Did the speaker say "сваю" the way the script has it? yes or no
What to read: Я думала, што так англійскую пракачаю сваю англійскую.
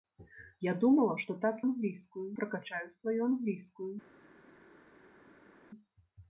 yes